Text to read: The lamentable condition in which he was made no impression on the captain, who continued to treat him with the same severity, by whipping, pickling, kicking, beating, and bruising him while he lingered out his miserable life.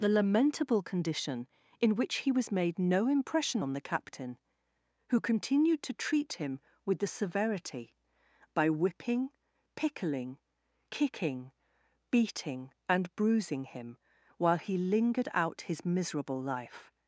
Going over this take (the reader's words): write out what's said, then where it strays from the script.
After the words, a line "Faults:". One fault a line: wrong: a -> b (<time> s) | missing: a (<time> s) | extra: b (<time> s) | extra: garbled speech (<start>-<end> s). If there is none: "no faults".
The lamentable condition in which he was made no impression on the captain, who continued to treat him with the severity, by whipping, pickling, kicking, beating, and bruising him while he lingered out his miserable life.
Faults:
missing: same (7.0 s)